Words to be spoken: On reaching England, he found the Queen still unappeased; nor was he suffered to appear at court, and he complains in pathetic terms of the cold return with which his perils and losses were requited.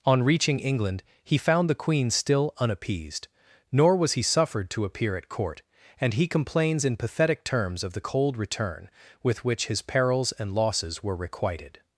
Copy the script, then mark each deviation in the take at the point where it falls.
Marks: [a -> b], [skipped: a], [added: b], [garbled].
On reaching England, he found the Queen still unappeased; nor was he suffered to appear at court, and he complains in pathetic terms of the cold return with which his perils and losses were requited.